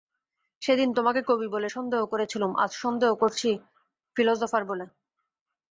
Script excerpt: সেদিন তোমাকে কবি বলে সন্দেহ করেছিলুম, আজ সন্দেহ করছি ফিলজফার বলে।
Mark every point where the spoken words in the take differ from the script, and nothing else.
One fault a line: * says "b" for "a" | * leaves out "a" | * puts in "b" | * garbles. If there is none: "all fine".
all fine